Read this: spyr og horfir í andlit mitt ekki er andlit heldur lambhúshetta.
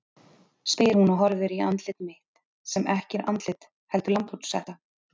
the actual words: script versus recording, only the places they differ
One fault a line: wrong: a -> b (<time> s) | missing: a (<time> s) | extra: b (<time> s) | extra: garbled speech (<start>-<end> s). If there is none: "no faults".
extra: hún (1.0 s)
extra: sem (2.8 s)